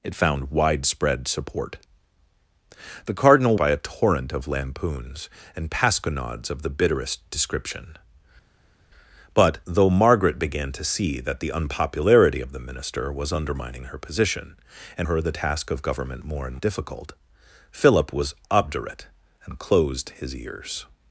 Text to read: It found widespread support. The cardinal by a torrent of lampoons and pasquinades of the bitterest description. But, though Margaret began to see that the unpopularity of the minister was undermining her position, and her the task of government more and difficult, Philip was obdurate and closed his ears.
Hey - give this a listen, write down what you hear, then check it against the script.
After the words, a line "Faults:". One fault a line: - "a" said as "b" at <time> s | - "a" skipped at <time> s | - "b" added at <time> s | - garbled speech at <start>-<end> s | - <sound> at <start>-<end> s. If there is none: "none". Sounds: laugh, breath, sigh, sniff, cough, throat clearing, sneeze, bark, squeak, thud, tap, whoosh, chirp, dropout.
It found widespread support. The cardinal by a torrent of lampoons and pasquinades of the bitterest description. But, though Margaret began to see that the unpopularity of the minister was undermining her position, and her the task of government more and difficult, Philip was obdurate and closed his ears.
Faults:
none